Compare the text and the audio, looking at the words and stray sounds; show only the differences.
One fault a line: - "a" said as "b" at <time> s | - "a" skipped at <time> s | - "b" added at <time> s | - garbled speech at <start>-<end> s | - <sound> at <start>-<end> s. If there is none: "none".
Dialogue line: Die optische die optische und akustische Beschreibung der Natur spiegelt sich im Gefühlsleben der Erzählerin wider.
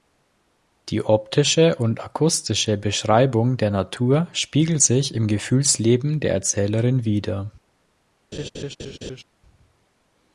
- "die optische" skipped at 1.8 s
- laugh at 8.3-9.2 s